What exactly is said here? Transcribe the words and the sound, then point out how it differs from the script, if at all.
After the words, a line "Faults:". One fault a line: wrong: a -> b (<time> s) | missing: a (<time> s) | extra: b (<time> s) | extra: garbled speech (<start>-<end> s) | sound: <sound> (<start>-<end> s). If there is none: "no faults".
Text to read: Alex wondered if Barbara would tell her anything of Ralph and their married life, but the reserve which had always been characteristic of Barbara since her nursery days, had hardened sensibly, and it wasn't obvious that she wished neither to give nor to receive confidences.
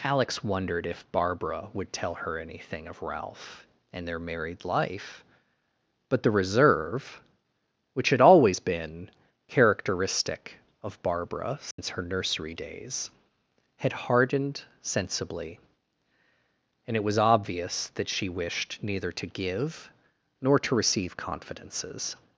Alex wondered if Barbara would tell her anything of Ralph and their married life, but the reserve which had always been characteristic of Barbara since her nursery days, had hardened sensibly, and it was obvious that she wished neither to give nor to receive confidences.
Faults:
sound: dropout (11.7-11.8 s)
wrong: wasn't -> was (17.0 s)